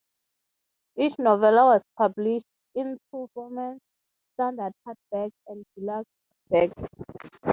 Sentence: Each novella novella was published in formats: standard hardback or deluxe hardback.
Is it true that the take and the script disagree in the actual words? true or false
true